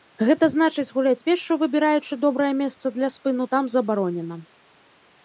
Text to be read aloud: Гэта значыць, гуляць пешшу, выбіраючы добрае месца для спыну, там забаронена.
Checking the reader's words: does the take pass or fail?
pass